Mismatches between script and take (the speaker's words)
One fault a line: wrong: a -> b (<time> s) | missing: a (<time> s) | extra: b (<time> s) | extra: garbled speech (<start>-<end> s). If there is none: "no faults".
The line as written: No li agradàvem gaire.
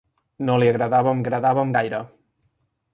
extra: agradàvem (1.2 s)